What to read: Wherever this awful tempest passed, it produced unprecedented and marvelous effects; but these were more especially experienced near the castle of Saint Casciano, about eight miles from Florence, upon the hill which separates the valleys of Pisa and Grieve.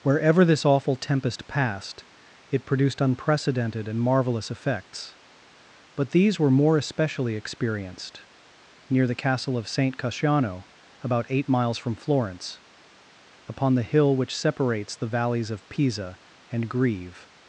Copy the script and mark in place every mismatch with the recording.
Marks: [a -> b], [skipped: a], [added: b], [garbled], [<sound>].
Wherever this awful tempest passed, it produced unprecedented and marvelous effects; but these were more especially experienced near the castle of Saint Casciano, about eight miles from Florence, upon the hill which separates the valleys of Pisa and Grieve.